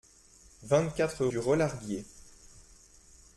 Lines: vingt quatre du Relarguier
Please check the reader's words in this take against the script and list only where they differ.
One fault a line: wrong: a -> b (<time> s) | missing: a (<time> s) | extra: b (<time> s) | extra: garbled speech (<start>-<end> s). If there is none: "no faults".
no faults